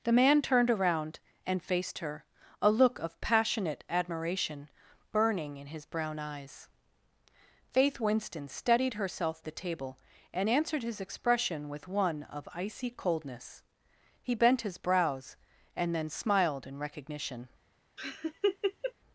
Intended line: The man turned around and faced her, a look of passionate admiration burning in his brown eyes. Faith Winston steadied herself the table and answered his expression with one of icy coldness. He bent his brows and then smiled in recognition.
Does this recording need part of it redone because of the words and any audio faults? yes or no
yes